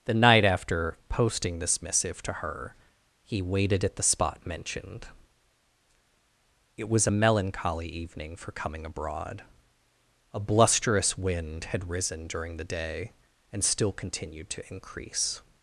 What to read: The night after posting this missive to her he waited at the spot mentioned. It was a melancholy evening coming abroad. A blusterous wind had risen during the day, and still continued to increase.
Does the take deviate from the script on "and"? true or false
false